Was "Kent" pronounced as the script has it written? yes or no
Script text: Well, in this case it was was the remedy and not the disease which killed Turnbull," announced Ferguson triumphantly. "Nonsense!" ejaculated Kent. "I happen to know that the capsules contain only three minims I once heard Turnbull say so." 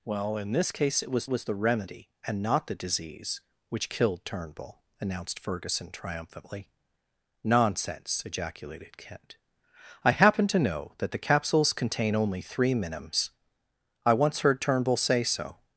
yes